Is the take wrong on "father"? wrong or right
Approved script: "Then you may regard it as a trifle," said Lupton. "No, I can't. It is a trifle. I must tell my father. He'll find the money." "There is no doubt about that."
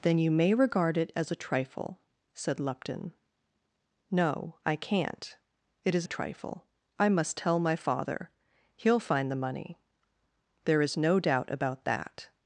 right